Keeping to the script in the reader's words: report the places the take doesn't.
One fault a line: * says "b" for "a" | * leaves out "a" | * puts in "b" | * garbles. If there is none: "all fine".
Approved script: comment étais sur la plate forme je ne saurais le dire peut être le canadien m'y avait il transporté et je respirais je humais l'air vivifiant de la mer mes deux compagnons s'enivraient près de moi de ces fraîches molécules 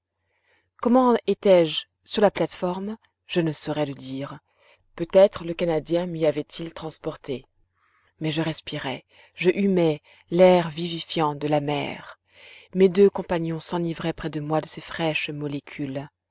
* puts in "je"
* says "mais" for "et"